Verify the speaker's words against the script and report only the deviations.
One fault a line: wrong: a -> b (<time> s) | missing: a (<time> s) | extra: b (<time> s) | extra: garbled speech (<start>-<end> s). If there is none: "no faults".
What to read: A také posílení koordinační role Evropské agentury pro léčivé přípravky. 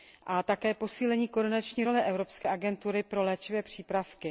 no faults